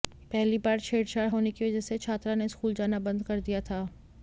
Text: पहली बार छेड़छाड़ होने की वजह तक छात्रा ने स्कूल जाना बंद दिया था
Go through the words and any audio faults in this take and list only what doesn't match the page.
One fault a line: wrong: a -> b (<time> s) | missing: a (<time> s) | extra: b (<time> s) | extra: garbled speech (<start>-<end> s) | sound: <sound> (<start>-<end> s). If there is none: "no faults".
wrong: तक -> से (1.8 s)
extra: कर (3.3 s)